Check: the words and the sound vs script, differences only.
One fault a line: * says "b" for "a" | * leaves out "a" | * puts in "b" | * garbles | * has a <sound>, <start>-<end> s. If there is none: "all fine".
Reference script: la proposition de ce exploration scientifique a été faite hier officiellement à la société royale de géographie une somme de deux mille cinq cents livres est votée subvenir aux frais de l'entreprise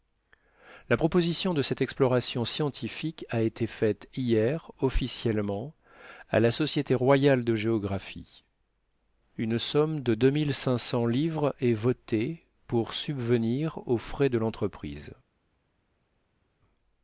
* says "cette" for "ce"
* puts in "pour"